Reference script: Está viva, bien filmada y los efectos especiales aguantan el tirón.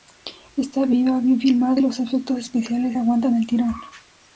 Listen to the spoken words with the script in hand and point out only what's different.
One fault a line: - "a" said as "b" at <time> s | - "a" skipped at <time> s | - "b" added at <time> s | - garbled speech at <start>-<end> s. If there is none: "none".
none